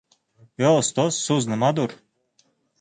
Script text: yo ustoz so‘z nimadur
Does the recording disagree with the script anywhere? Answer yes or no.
no